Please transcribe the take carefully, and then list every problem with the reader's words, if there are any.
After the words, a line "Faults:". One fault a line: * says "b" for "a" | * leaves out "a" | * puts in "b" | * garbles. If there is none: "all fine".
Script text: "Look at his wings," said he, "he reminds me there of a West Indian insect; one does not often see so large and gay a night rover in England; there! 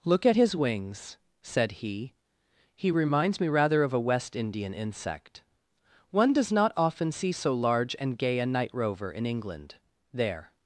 "Look at his wings," said he, "he reminds me rather of a West Indian insect; one does not often see so large and gay a night rover in England; there!
Faults:
* says "rather" for "there"